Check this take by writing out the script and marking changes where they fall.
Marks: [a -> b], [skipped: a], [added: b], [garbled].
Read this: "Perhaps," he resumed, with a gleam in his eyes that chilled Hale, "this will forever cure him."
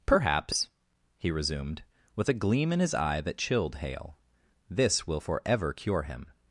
"Perhaps," he resumed, with a gleam in his [eyes -> eye] that chilled Hale, "this will forever cure him."